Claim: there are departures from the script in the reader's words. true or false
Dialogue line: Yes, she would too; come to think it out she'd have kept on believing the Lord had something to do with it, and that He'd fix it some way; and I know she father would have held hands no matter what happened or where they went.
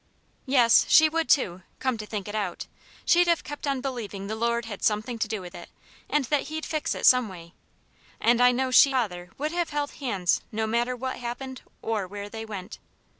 false